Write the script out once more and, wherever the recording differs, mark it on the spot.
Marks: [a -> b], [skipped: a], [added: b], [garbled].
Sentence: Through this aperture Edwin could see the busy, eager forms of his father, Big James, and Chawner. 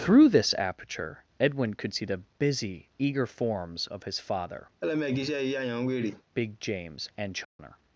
Through this aperture Edwin could see the busy, eager forms of his father, Big James, and Chawner.